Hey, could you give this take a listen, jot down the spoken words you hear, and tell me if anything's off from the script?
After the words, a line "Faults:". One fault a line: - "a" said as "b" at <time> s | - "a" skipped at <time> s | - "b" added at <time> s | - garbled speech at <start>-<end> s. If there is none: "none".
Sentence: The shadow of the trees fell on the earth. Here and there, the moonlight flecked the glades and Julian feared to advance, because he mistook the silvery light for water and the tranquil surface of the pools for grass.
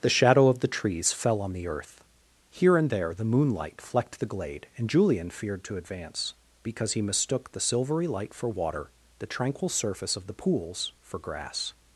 The shadow of the trees fell on the earth. Here and there, the moonlight flecked the glade and Julian feared to advance, because he mistook the silvery light for water the tranquil surface of the pools for grass.
Faults:
- "glades" said as "glade" at 4.2 s
- "and" skipped at 8.9 s